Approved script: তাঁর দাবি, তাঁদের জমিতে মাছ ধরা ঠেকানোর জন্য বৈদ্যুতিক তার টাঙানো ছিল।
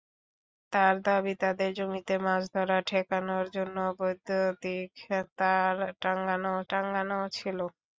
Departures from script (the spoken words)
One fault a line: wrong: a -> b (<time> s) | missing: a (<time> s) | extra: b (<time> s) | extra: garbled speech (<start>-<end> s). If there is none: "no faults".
extra: টাঙানো (6.7 s)